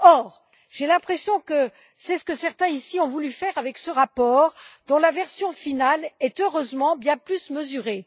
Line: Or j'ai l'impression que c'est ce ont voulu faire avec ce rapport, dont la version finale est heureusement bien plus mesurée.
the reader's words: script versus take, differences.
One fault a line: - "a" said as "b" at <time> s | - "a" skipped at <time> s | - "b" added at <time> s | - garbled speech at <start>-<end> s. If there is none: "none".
- "que certains ici" added at 2.2 s